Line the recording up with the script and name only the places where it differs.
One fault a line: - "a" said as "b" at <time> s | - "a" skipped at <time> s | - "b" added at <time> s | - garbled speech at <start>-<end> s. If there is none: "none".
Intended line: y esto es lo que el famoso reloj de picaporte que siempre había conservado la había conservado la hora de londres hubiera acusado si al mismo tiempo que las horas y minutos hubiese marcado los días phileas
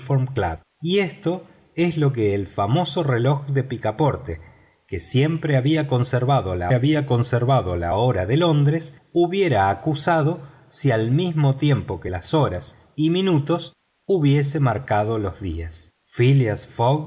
none